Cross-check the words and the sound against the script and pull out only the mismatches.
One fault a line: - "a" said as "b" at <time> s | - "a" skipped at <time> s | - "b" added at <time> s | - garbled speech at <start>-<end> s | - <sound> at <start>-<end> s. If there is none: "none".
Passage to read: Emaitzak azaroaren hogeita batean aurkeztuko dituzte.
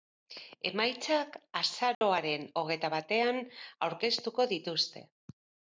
- dropout at 1.9-2.0 s